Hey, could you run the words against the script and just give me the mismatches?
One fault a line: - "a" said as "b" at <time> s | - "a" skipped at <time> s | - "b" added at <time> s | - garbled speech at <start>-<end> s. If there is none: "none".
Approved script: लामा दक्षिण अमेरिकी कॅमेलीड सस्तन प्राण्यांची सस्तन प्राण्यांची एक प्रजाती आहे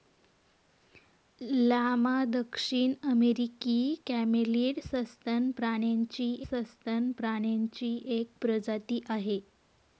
none